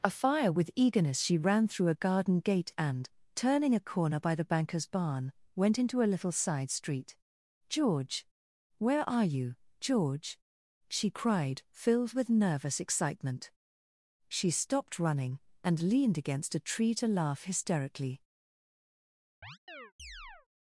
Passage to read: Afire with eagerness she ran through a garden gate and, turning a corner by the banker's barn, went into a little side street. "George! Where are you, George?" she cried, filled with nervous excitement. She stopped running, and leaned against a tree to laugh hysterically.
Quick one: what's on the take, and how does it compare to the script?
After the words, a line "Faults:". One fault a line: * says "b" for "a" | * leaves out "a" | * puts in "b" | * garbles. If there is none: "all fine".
Afire with eagerness she ran through a garden gate and, turning a corner by the banker's barn, went into a little side street. "George! Where are you, George?" she cried, filled with nervous excitement. She stopped running, and leaned against a tree to laugh hysterically.
Faults:
all fine